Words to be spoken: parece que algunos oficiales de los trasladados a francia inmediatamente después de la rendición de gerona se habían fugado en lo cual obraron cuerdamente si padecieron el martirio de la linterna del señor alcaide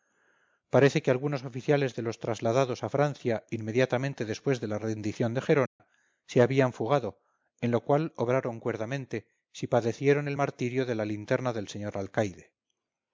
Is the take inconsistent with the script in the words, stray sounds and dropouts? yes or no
yes